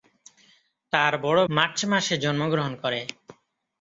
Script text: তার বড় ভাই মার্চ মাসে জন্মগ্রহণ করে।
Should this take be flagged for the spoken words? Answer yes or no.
yes